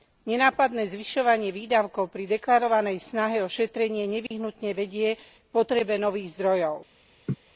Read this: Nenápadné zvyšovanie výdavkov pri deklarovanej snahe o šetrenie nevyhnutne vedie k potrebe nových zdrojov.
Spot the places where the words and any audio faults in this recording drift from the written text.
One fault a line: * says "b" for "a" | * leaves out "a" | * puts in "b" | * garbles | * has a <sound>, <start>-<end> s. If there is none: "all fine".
* has a dropout, 4.3-4.3 s
* has a laugh, 7.3-7.4 s